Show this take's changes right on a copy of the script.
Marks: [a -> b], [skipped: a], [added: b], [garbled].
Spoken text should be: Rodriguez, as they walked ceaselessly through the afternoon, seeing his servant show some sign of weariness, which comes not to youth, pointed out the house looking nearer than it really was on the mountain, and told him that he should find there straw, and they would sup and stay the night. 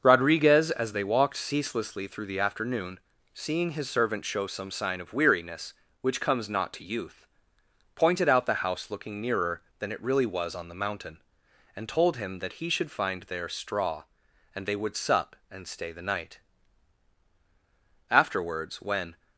Rodriguez, as they walked ceaselessly through the afternoon, seeing his servant show some sign of weariness, which comes not to youth, pointed out the house looking nearer than it really was on the mountain, and told him that he should find there straw, and they would sup and stay the night. [added: Afterwards when]